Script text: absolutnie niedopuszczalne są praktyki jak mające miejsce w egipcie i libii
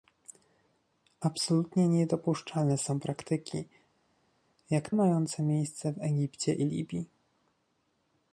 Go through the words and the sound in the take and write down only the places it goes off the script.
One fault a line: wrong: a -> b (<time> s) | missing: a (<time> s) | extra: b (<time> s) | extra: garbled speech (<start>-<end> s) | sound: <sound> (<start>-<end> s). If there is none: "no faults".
no faults